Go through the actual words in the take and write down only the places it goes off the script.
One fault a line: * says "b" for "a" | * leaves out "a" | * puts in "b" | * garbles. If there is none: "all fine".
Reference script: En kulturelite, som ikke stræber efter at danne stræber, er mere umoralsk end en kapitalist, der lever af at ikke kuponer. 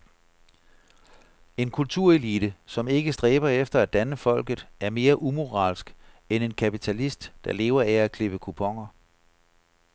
* says "folket" for "stræber"
* says "klippe" for "ikke"